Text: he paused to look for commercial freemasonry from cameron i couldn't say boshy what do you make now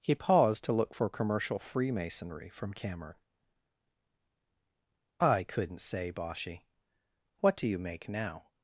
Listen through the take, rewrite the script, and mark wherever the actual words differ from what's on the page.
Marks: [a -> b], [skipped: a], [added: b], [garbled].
he paused to look for commercial freemasonry from cameron i couldn't say boshy what do you make now